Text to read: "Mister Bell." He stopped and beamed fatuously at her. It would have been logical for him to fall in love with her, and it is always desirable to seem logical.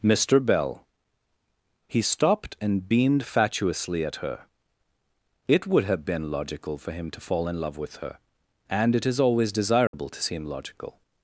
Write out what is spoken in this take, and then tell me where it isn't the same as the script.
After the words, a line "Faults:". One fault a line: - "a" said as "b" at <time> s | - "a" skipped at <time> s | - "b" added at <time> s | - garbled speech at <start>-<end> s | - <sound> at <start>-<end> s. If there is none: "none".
"Mister Bell." He stopped and beamed fatuously at her. It would have been logical for him to fall in love with her, and it is always desirable to seem logical.
Faults:
- dropout at 9.9-9.9 s